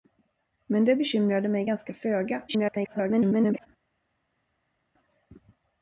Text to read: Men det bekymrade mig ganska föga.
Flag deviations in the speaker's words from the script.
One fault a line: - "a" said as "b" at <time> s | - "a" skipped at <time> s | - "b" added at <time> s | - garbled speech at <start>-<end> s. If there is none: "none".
- garbled speech at 2.5-3.7 s